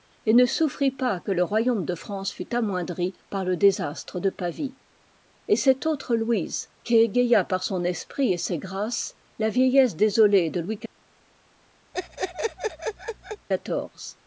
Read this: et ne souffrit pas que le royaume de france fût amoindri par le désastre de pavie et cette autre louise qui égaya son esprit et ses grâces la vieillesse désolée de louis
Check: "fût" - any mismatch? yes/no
no